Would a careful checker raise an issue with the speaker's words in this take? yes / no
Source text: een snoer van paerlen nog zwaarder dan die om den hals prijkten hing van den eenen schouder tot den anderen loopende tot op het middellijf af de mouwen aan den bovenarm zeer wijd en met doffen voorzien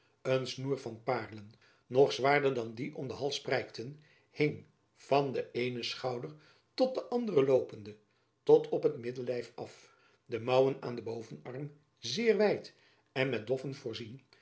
no